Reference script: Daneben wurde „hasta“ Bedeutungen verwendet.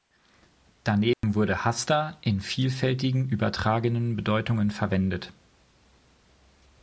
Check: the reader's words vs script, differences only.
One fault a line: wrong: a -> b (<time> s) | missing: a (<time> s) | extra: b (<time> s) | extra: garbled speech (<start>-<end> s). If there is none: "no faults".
extra: in vielfältigen übertragenen (2.2 s)